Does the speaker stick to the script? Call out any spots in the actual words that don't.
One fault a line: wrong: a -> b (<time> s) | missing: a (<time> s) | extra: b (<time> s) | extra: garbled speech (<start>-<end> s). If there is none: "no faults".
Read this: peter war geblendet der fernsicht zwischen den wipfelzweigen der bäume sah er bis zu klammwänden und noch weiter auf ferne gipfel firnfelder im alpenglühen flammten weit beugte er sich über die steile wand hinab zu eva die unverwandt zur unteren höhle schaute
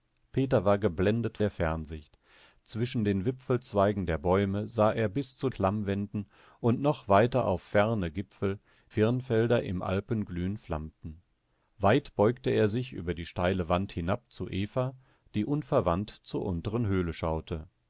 no faults